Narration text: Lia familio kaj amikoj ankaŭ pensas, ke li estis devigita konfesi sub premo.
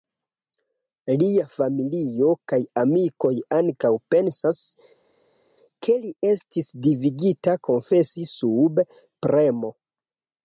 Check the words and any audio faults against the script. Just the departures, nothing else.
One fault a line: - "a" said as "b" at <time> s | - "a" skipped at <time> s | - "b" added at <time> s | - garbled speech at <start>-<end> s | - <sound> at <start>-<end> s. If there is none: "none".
none